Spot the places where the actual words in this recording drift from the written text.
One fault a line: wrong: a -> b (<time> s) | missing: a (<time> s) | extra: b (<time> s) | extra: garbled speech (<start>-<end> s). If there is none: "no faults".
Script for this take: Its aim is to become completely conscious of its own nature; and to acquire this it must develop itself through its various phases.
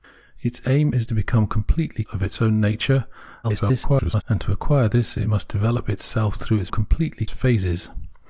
missing: conscious (2.0 s)
extra: garbled speech (3.4-4.2 s)
wrong: various -> completely (6.7 s)